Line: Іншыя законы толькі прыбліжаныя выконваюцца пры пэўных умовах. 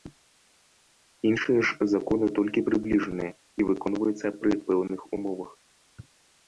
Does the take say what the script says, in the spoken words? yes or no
no